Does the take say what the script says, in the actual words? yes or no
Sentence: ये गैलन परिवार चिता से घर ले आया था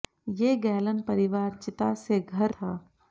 no